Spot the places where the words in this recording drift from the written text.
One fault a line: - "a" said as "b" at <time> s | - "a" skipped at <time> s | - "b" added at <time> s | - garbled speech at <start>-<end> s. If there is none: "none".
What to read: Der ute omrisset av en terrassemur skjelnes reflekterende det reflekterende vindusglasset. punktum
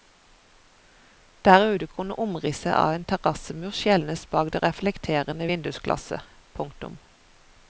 - "kunne" added at 1.9 s
- "reflekterende" said as "bak" at 4.4 s